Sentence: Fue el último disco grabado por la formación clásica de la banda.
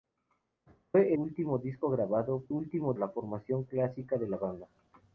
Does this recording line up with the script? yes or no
no